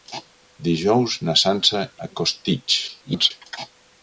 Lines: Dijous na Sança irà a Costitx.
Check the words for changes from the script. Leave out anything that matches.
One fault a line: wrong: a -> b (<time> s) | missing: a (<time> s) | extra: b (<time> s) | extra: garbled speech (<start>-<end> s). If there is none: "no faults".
missing: irà (1.8 s)
extra: garbled speech (2.9-3.3 s)